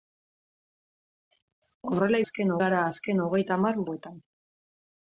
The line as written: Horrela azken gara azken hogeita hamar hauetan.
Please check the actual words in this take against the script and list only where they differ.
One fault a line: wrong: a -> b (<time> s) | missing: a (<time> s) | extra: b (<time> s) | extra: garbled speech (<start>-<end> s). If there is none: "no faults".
no faults